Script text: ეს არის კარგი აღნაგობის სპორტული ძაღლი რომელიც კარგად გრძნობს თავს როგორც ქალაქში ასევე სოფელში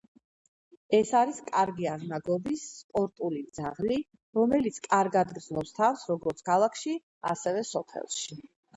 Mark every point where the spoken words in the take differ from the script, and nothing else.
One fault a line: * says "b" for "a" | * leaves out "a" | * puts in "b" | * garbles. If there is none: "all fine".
all fine